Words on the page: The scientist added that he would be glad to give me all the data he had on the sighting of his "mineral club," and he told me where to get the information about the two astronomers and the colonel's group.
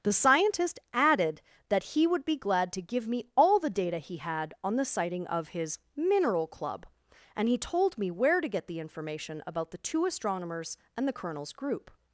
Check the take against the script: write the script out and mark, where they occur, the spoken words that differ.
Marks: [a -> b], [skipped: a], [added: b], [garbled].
The scientist added that he would be glad to give me all the data he had on the sighting of his "mineral club," and he told me where to get the information about the two astronomers and the colonel's group.